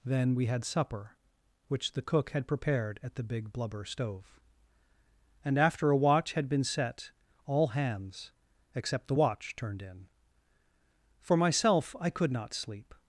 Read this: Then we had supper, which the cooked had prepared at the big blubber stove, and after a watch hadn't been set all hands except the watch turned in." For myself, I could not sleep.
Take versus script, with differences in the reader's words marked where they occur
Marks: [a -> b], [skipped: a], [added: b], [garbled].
Then we had supper, which the [cooked -> cook] had prepared at the big blubber stove, and after a watch [hadn't -> had] been set all hands except the watch turned in." For myself, I could not sleep.